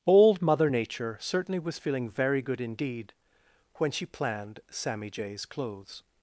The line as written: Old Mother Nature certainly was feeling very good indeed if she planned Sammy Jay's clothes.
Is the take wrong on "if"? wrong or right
wrong